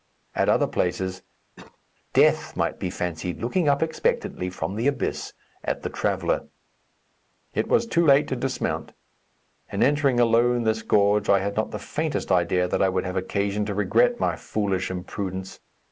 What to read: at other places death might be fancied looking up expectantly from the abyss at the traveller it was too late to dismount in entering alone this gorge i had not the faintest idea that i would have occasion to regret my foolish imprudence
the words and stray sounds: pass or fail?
fail